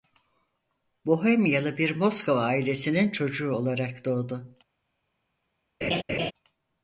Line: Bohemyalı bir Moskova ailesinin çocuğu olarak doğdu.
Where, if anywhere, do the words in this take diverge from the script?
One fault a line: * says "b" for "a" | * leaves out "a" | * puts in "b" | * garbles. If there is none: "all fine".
all fine